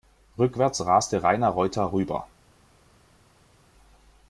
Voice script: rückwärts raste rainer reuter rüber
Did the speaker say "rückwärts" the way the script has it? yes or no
yes